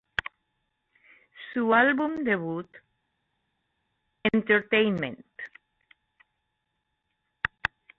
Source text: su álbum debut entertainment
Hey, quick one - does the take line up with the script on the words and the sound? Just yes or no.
yes